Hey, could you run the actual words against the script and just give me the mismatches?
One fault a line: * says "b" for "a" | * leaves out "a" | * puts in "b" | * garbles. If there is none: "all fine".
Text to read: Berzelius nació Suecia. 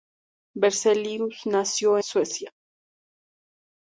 all fine